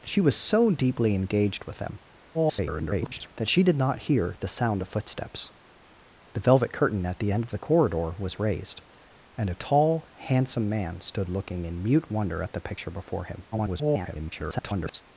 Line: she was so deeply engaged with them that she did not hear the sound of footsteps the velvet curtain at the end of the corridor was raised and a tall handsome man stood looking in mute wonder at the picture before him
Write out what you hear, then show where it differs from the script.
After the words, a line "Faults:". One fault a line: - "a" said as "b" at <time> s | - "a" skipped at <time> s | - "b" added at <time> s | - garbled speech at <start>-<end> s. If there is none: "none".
she was so deeply engaged with them [garbled] that she did not hear the sound of footsteps the velvet curtain at the end of the corridor was raised and a tall handsome man stood looking in mute wonder at the picture before him [garbled]
Faults:
- garbled speech at 2.3-3.3 s
- garbled speech at 13.5-15.0 s